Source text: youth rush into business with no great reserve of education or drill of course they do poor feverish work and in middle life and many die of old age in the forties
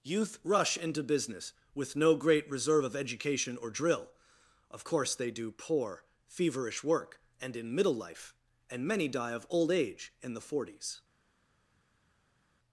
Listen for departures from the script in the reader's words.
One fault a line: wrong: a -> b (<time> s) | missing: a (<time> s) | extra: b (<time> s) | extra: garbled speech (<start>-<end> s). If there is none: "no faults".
no faults